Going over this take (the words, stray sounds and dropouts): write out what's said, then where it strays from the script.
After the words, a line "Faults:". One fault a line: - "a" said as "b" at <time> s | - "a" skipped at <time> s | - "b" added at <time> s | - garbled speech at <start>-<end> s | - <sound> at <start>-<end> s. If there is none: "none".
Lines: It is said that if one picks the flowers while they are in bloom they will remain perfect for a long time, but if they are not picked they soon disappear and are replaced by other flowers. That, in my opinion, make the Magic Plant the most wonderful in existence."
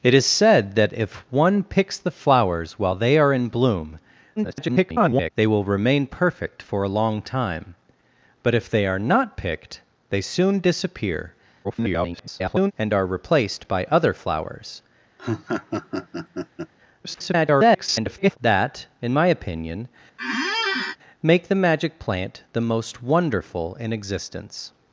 It is said that if one picks the flowers while they are in bloom [garbled] they will remain perfect for a long time, but if they are not picked they soon disappear [garbled] and are replaced by other flowers. [garbled] That, in my opinion, make the Magic Plant the most wonderful in existence."
Faults:
- garbled speech at 4.4-5.3 s
- garbled speech at 11.6-12.7 s
- laugh at 15.2-16.7 s
- garbled speech at 17.0-18.4 s
- squeak at 20.2-21.0 s